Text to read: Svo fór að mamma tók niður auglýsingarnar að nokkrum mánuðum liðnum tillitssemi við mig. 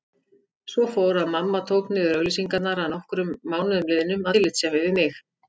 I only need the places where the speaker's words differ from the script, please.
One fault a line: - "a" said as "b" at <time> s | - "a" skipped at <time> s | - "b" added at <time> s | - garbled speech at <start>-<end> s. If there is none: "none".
none